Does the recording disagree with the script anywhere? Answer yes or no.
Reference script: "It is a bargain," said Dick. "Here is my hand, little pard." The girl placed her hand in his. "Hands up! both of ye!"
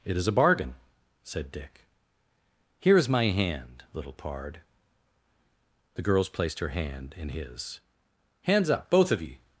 yes